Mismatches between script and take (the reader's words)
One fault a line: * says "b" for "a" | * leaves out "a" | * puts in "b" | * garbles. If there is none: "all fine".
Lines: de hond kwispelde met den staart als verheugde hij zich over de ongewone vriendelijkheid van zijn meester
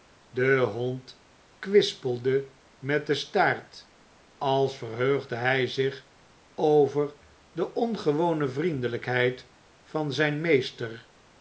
all fine